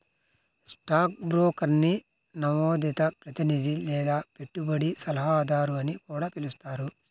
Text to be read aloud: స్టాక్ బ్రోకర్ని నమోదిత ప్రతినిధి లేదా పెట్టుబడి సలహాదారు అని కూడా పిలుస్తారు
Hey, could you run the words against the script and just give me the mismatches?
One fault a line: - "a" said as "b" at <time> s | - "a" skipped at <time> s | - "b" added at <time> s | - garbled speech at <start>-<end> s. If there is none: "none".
none